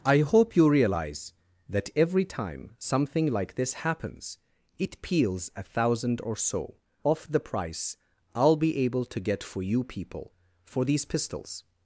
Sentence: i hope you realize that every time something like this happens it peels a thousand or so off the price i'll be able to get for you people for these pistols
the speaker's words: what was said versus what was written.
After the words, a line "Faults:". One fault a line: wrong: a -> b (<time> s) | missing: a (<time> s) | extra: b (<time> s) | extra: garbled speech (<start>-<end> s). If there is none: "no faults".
i hope you realize that every time something like this happens it peels a thousand or so off the price i'll be able to get for you people for these pistols
Faults:
no faults